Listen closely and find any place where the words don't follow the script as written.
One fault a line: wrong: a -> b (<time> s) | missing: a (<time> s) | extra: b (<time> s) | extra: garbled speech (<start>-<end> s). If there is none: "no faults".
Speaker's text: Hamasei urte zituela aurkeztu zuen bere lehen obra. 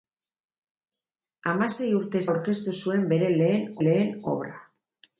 missing: zituela (2.2 s)
extra: lehen (3.8 s)